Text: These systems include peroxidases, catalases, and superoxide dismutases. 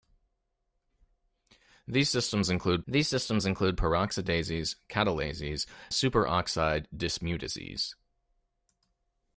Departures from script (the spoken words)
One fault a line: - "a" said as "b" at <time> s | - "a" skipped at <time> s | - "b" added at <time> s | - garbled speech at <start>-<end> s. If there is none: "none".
- "these systems include" added at 2.9 s
- "and" skipped at 5.7 s